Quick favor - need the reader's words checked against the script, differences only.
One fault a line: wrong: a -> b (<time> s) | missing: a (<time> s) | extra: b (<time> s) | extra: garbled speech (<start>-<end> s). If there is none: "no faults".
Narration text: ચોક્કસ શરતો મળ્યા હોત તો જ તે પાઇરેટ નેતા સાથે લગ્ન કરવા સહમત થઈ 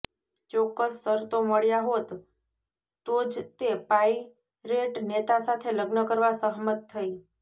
no faults